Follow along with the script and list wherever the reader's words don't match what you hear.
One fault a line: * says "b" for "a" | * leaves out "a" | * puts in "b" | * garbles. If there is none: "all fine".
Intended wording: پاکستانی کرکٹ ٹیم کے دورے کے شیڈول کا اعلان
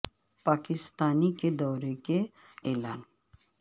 * leaves out "کرکٹ ٹیم"
* leaves out "شیڈول کا"